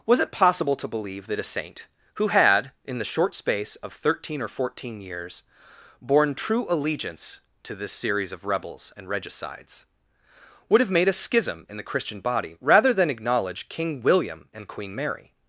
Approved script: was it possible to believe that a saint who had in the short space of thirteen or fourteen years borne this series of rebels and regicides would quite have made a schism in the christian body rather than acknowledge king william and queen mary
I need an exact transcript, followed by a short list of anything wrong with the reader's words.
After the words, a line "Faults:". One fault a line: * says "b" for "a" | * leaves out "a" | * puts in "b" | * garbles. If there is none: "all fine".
was it possible to believe that a saint who had in the short space of thirteen or fourteen years borne true allegiance to this series of rebels and regicides would have made a schism in the christian body rather than acknowledge king william and queen mary
Faults:
* puts in "true allegiance to"
* leaves out "quite"